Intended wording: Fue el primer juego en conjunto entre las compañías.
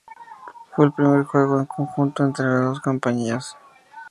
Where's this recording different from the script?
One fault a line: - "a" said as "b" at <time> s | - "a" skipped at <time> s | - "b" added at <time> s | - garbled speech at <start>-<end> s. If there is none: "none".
- "dos" added at 2.6 s